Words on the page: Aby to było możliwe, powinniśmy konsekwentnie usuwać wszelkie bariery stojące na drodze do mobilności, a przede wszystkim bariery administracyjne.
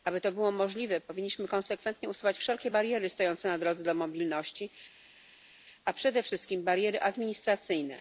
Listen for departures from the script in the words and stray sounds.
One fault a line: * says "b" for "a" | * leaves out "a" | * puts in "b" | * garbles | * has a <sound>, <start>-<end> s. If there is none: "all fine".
all fine